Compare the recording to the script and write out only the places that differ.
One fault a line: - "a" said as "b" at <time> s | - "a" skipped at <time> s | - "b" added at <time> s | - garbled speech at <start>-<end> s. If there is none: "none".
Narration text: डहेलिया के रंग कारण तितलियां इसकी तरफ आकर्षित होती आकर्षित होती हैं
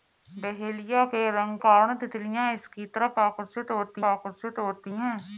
none